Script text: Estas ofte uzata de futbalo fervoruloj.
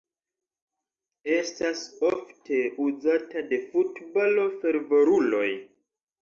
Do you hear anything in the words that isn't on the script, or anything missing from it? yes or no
no